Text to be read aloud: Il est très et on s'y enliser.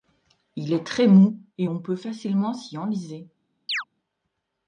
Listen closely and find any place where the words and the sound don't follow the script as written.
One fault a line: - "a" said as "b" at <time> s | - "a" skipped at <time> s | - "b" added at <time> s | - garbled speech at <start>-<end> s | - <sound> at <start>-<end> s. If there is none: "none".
- "mou" added at 1.1 s
- "peut facilement" added at 1.8 s
- chirp at 3.7-3.8 s